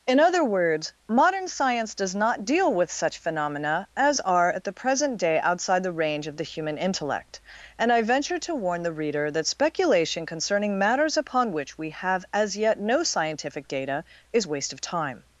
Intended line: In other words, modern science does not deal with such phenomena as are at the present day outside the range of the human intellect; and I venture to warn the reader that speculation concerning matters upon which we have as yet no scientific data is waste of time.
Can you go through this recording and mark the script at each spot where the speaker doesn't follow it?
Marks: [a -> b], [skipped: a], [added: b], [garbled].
In other words, modern science does not deal with such phenomena as are at the present day outside the range of the human intellect; and I venture to warn the reader that speculation concerning matters upon which we have as yet no scientific data is waste of time.